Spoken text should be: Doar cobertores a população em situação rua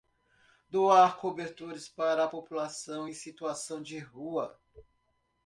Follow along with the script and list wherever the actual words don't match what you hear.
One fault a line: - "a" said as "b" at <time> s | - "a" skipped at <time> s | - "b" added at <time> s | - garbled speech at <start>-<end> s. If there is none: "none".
- "para" added at 1.9 s
- "de" added at 3.8 s